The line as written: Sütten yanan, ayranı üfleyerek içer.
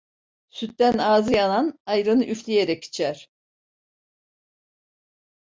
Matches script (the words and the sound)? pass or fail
fail